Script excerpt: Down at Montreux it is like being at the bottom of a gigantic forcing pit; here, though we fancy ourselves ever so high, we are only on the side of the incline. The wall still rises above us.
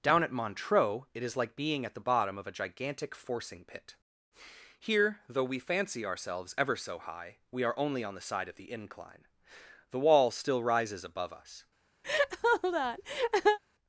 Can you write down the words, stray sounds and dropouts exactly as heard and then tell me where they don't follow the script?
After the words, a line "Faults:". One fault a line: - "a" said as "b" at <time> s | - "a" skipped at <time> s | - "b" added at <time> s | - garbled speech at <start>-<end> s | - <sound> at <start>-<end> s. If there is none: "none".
Down at Montreux it is like being at the bottom of a gigantic forcing pit; here, though we fancy ourselves ever so high, we are only on the side of the incline. The wall still rises above us.
Faults:
- laugh at 12.0-13.6 s